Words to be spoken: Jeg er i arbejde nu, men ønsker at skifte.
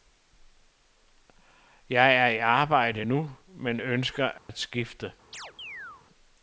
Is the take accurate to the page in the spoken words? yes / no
yes